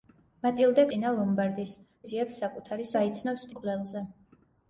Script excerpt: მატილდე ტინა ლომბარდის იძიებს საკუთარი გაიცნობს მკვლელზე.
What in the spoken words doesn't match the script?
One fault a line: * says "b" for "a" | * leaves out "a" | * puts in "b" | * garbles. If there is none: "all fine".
all fine